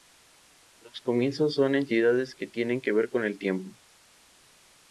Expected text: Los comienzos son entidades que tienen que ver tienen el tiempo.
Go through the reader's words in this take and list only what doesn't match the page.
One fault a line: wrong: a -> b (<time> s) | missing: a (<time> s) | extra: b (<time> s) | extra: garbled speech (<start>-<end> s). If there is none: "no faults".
wrong: tienen -> con (3.1 s)